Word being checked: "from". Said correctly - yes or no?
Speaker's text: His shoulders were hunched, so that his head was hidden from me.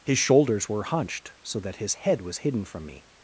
yes